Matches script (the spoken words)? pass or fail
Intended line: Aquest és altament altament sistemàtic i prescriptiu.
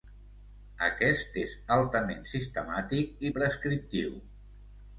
fail